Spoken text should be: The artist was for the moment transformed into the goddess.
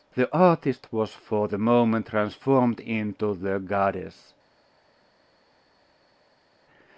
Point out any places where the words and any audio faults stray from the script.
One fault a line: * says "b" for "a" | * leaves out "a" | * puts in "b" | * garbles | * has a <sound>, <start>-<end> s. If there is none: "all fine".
all fine